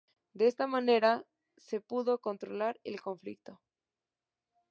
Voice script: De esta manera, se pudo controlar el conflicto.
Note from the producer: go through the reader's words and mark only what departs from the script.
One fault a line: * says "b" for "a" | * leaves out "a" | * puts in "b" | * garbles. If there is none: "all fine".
all fine